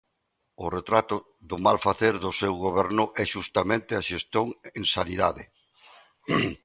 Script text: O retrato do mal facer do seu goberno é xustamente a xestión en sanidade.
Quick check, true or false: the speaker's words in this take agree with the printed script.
true